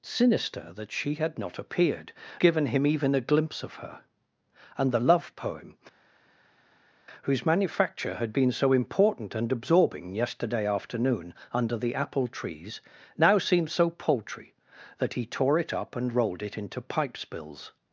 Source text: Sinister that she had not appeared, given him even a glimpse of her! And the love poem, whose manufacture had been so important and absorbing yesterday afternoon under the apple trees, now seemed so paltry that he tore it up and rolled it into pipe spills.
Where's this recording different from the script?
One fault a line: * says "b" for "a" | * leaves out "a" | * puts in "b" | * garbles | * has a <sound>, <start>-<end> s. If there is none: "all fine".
all fine